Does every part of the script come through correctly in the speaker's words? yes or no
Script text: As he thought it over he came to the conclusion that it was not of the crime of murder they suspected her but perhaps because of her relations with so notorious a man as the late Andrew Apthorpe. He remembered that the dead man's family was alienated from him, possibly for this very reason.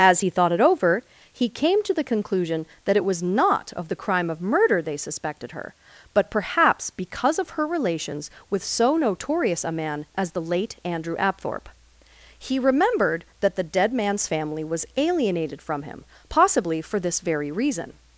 yes